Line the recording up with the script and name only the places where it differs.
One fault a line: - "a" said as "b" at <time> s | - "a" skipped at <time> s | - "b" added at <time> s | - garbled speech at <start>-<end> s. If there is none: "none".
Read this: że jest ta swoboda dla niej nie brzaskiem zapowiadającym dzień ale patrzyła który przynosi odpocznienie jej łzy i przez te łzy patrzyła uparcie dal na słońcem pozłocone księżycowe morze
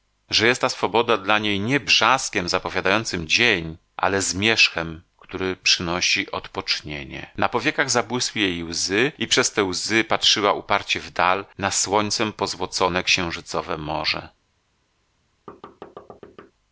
- "patrzyła" said as "zmierzchem" at 4.2 s
- "na powiekach zabłysły" added at 7.4 s
- "w" added at 11.0 s